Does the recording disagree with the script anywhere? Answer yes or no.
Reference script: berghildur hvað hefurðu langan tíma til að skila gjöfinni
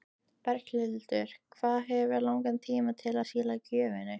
no